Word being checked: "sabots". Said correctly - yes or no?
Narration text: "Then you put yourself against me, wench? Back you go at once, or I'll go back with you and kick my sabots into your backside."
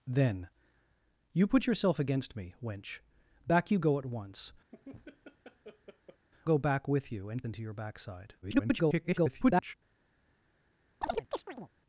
no